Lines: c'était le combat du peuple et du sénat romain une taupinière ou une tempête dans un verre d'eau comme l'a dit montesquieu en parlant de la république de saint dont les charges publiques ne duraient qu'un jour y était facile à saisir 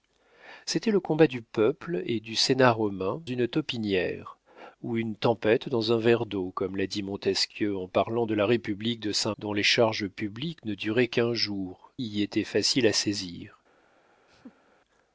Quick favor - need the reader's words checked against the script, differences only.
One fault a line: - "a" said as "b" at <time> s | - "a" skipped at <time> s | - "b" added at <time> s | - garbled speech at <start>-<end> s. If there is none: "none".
none